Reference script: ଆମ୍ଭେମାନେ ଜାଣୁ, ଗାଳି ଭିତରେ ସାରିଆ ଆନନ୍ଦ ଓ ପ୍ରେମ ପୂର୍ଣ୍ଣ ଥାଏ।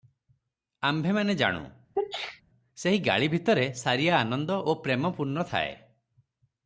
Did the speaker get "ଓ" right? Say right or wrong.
right